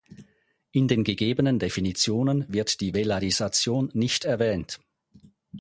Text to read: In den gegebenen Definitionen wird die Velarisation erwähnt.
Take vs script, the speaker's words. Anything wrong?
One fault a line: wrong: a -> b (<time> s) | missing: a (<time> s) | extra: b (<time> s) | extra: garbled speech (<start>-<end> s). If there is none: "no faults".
extra: nicht (3.9 s)